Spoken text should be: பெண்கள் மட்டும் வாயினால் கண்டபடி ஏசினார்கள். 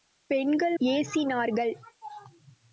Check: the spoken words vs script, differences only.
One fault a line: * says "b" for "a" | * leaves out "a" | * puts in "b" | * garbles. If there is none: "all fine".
* leaves out "மட்டும் வாயினால் கண்டபடி"